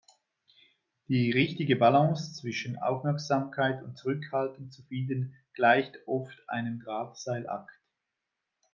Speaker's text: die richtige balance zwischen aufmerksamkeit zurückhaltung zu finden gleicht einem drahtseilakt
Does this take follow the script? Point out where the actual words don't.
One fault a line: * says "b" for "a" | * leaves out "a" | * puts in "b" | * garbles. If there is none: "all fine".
* puts in "und"
* puts in "oft"